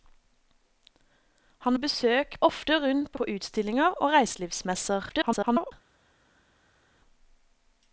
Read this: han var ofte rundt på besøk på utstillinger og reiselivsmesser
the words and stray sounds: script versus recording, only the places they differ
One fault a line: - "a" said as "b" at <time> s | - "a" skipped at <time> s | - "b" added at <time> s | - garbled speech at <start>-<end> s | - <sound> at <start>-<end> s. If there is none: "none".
- "var" said as "besøk" at 1.8 s
- "besøk" skipped at 3.2 s
- garbled speech at 5.1-5.7 s